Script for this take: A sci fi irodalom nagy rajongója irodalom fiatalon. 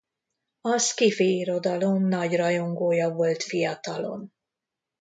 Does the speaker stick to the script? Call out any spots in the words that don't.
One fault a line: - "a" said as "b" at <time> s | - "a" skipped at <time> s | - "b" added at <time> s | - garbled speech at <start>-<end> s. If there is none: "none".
- "irodalom" said as "volt" at 3.1 s